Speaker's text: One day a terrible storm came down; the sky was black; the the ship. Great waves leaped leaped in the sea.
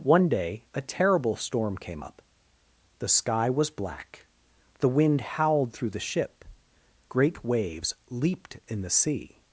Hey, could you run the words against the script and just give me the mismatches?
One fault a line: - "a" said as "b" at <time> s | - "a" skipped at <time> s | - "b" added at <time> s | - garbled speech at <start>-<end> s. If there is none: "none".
- "down" said as "up" at 2.0 s
- "wind howled through" added at 4.9 s
- "leaped" skipped at 8.6 s